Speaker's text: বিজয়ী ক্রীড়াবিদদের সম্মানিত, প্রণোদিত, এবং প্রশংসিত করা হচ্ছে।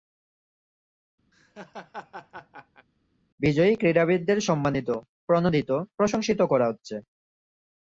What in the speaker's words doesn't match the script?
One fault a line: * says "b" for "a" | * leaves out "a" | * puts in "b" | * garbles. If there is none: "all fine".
* leaves out "এবং"